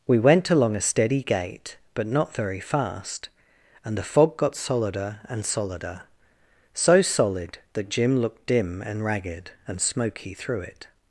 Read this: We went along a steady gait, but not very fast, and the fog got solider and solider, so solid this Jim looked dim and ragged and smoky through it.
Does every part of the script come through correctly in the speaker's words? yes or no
no